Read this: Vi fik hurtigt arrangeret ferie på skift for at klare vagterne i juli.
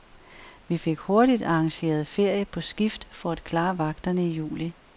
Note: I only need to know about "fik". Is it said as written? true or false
true